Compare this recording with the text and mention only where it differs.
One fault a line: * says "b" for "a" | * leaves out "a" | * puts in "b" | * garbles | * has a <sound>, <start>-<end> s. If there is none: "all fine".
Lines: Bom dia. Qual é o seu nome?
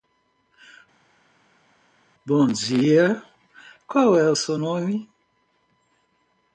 all fine